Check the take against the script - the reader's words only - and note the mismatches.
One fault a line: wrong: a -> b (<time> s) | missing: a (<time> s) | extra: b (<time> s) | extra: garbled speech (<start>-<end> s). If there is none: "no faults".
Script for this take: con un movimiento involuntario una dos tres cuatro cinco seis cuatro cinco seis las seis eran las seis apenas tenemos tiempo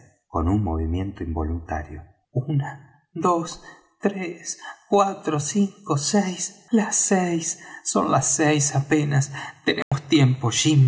missing: cuatro cinco seis (6.6 s)
wrong: eran -> son (7.8 s)